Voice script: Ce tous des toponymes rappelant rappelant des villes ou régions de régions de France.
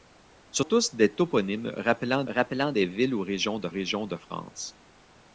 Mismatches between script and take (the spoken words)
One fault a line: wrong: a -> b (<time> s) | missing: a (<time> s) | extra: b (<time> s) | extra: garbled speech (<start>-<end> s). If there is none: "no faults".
no faults